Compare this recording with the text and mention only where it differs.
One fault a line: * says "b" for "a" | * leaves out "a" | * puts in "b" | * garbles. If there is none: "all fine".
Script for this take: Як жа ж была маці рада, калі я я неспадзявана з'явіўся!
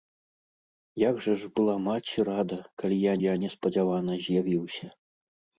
all fine